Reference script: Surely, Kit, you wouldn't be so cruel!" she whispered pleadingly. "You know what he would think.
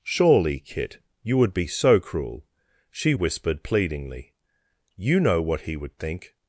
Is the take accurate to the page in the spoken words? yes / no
no